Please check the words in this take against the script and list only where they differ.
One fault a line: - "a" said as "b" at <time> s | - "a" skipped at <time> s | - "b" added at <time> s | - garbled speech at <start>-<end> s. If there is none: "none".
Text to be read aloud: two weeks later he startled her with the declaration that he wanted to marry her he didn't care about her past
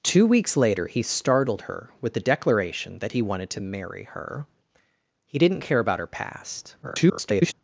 - garbled speech at 6.8-7.5 s